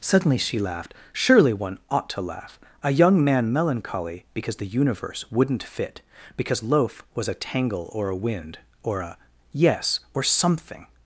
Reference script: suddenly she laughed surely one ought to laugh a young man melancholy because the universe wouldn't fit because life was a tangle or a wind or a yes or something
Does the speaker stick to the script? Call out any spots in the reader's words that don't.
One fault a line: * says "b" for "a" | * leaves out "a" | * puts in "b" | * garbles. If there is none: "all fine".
* says "loaf" for "life"